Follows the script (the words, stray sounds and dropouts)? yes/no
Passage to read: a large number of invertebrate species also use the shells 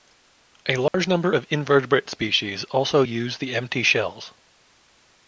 no